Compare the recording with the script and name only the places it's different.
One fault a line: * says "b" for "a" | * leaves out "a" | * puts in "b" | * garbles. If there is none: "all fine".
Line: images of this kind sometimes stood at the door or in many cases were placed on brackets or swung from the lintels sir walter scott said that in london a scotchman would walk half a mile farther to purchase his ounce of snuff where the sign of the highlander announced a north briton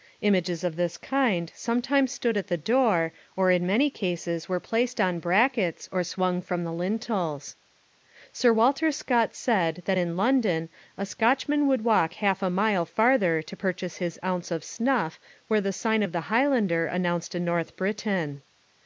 all fine